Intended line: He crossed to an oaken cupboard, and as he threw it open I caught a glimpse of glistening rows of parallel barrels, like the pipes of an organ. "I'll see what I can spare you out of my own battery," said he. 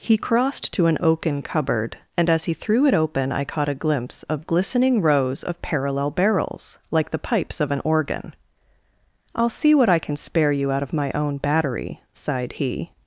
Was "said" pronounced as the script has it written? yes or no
no